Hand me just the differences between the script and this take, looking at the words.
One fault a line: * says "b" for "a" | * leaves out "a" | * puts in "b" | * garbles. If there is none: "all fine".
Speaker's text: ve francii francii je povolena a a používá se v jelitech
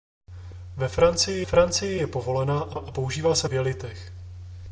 all fine